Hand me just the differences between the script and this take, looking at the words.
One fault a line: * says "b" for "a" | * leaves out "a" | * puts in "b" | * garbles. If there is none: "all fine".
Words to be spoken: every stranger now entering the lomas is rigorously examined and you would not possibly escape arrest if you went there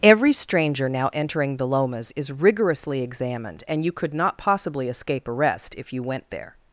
* says "could" for "would"